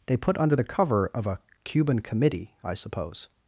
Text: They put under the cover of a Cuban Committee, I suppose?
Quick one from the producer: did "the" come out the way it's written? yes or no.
yes